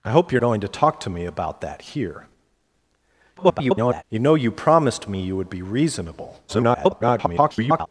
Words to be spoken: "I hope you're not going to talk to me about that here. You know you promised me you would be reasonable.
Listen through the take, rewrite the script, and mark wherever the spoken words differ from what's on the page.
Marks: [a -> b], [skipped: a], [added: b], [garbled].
"I hope you're [skipped: not] going to talk to me about that here. [garbled] You know you promised me you would be reasonable. [garbled]